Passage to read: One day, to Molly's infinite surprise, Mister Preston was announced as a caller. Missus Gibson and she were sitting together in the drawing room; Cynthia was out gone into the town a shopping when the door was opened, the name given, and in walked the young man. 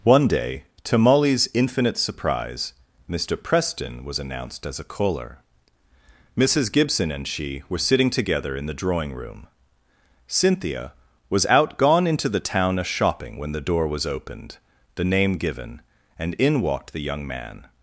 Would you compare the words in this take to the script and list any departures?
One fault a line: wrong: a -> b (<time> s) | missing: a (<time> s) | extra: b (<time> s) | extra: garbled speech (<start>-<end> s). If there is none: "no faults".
no faults